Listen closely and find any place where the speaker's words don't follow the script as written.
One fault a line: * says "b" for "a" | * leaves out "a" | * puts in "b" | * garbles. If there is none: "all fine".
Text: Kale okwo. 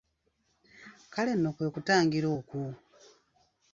* puts in "nno kwe kutangira"